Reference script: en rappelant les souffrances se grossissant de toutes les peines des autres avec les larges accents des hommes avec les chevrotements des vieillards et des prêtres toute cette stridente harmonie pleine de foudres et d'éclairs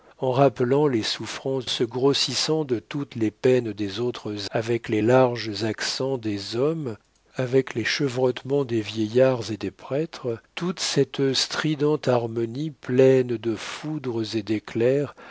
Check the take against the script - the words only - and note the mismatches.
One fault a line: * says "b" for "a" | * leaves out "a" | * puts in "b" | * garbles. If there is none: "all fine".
all fine